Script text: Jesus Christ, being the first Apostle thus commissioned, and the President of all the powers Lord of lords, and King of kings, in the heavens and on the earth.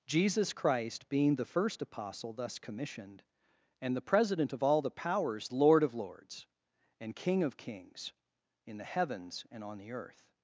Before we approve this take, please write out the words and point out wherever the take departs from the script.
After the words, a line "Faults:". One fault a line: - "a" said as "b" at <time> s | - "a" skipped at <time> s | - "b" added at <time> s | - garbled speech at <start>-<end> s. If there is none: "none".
Jesus Christ, being the first Apostle thus commissioned, and the President of all the powers Lord of lords, and King of kings, in the heavens and on the earth.
Faults:
none